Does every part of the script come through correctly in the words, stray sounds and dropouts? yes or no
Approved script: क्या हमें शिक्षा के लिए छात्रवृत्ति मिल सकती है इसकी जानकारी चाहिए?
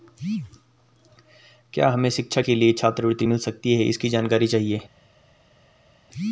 yes